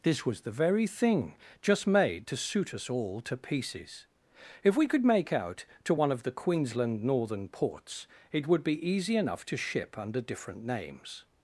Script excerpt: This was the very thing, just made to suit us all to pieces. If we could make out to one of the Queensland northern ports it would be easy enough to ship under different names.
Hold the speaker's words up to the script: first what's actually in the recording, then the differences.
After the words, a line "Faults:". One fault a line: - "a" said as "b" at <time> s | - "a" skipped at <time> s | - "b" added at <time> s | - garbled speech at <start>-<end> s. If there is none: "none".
This was the very thing, just made to suit us all to pieces. If we could make out to one of the Queensland northern ports it would be easy enough to ship under different names.
Faults:
none